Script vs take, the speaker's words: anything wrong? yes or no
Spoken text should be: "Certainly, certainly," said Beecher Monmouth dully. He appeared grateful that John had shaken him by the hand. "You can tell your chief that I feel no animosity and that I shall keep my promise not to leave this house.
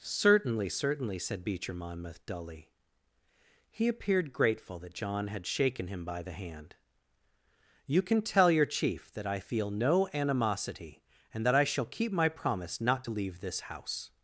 no